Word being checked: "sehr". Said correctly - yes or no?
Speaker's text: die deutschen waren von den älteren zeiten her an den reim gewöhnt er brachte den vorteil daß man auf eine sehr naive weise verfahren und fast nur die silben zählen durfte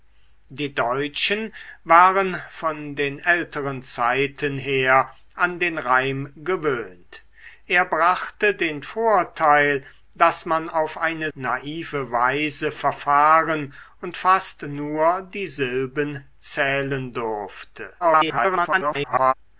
no